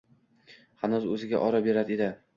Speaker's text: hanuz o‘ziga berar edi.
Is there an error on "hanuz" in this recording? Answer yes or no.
no